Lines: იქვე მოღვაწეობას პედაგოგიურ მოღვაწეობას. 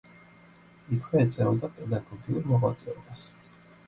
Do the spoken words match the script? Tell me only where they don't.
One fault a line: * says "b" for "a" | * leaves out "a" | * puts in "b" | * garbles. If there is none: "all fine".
* says "ეწეოდა" for "მოღვაწეობას"